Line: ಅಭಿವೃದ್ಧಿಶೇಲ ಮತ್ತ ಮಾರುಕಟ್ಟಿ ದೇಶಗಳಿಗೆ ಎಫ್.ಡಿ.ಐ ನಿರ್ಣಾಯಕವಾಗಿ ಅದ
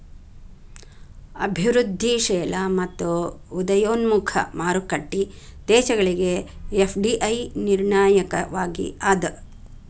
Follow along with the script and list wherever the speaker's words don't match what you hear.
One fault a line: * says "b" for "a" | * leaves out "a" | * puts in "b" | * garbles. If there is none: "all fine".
* puts in "ಉದಯೋನ್ಮುಖ"